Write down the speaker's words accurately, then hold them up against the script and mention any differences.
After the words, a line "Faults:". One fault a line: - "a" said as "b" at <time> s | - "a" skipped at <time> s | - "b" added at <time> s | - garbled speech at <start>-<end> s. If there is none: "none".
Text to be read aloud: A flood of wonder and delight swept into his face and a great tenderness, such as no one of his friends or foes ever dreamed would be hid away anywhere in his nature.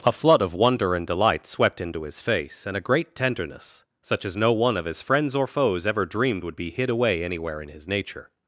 A flood of wonder and delight swept into his face and a great tenderness, such as no one of his friends or foes ever dreamed would be hid away anywhere in his nature.
Faults:
none